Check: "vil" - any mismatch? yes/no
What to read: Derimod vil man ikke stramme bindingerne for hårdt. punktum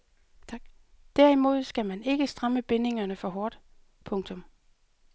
yes